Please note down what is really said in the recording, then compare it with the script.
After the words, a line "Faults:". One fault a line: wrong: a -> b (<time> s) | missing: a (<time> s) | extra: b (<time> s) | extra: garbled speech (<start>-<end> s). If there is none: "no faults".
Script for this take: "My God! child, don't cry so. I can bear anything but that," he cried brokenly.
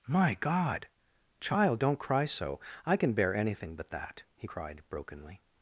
"My God! child, don't cry so. I can bear anything but that," he cried brokenly.
Faults:
no faults